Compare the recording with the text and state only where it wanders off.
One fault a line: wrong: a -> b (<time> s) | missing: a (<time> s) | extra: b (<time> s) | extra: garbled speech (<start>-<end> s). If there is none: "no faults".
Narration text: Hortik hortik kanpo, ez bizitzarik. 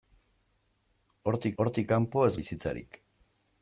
no faults